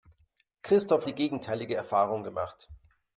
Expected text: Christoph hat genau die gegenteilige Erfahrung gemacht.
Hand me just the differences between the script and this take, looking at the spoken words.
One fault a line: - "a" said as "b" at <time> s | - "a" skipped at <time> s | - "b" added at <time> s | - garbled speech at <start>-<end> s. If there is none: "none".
- "hat genau" skipped at 1.1 s